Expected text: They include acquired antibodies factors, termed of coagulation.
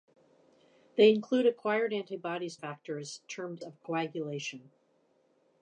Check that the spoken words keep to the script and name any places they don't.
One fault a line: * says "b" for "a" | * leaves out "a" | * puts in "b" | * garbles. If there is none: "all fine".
all fine